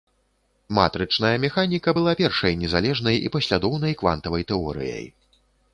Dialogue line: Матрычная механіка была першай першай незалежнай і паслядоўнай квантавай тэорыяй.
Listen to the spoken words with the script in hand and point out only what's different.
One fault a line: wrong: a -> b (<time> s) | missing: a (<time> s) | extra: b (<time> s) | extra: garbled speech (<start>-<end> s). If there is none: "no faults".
missing: першай (2.6 s)